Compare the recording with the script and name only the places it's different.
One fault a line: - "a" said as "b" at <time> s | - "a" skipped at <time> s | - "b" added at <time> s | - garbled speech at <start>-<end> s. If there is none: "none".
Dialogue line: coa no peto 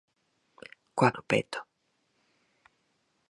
none